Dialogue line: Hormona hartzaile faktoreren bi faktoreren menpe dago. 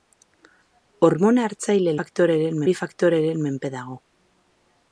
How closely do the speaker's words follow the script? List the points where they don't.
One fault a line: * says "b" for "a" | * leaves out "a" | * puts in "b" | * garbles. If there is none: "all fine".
all fine